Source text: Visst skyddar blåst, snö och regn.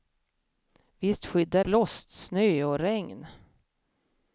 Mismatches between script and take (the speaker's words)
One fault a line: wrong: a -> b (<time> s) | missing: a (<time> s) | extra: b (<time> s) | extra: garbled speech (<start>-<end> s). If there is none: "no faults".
no faults